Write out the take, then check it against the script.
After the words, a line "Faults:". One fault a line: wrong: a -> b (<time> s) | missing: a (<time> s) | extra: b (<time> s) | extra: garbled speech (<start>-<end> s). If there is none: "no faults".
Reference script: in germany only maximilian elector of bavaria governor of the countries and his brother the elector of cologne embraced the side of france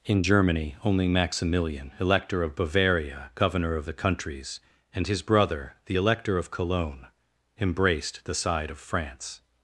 in germany only maximilian elector of bavaria governor of the countries and his brother the elector of cologne embraced the side of france
Faults:
no faults